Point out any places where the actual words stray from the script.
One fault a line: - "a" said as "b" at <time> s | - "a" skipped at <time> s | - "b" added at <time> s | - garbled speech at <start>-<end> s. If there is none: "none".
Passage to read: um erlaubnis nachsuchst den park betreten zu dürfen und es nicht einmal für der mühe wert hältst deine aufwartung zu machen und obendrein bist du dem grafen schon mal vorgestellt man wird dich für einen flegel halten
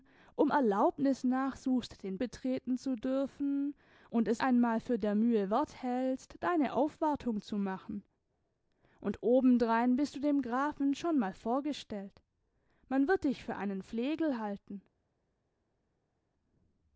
- "park" skipped at 2.2 s
- "nicht" skipped at 4.4 s